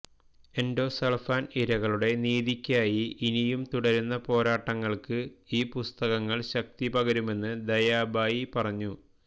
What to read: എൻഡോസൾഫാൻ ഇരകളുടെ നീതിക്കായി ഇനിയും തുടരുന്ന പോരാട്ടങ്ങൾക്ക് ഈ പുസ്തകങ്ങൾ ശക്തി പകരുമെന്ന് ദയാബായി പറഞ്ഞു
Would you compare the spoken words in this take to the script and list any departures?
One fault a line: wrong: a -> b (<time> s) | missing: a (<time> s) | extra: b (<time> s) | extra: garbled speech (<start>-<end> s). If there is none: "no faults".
no faults